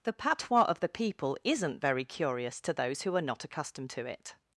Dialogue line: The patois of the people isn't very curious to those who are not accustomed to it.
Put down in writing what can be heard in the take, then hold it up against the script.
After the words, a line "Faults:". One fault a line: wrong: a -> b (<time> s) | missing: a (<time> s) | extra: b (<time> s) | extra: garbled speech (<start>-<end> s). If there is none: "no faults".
The patois of the people isn't very curious to those who are not accustomed to it.
Faults:
no faults